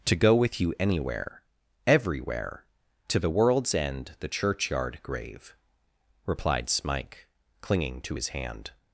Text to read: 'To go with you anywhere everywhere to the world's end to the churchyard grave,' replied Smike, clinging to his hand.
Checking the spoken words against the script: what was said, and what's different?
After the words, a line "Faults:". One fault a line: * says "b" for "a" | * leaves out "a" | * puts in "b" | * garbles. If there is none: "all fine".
'To go with you anywhere everywhere to the world's end the churchyard grave,' replied Smike, clinging to his hand.
Faults:
* leaves out "to"